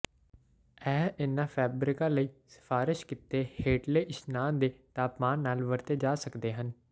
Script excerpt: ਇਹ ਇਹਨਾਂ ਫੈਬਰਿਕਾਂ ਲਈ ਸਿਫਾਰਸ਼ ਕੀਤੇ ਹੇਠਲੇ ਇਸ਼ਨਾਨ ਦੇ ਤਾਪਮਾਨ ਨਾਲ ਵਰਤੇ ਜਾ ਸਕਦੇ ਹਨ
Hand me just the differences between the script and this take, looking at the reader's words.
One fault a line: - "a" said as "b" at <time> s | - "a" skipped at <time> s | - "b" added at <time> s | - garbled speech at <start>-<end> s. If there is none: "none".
none